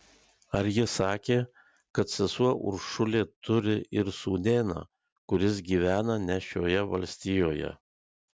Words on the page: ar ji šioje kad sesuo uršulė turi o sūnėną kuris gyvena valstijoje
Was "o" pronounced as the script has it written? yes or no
no